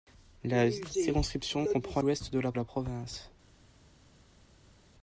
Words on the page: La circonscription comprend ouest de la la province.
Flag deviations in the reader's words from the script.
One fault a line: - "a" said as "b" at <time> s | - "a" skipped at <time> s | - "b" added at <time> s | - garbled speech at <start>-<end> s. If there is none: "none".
none